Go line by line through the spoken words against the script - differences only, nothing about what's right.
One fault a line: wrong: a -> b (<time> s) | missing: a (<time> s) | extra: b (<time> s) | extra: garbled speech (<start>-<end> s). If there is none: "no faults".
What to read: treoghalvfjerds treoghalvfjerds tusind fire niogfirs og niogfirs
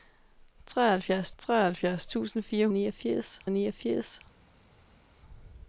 no faults